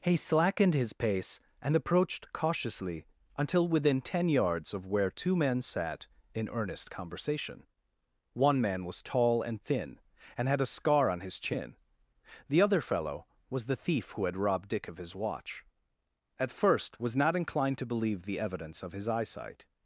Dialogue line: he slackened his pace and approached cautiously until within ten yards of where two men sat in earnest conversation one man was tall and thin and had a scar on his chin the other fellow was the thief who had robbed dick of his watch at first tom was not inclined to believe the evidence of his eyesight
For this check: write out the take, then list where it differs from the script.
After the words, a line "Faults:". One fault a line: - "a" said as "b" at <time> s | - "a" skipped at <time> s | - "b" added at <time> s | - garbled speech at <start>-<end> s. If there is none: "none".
he slackened his pace and approached cautiously until within ten yards of where two men sat in earnest conversation one man was tall and thin and had a scar on his chin the other fellow was the thief who had robbed dick of his watch at first was not inclined to believe the evidence of his eyesight
Faults:
- "tom" skipped at 17.0 s